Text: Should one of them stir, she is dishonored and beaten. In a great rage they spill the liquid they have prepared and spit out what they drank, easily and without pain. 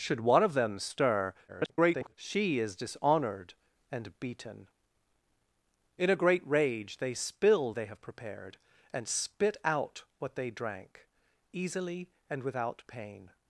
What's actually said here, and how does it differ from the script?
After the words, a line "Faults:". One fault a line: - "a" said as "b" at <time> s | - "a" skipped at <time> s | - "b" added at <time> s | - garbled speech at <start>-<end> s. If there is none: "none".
Should one of them stir, [garbled] she is dishonored and beaten. In a great rage they spill they have prepared and spit out what they drank, easily and without pain.
Faults:
- garbled speech at 1.5-2.1 s
- "the liquid" skipped at 7.7 s